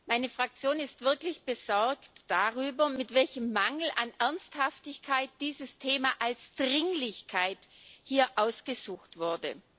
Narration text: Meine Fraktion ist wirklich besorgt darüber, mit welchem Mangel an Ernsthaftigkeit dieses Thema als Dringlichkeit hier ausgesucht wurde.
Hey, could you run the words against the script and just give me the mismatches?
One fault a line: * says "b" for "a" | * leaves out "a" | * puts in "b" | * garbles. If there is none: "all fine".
all fine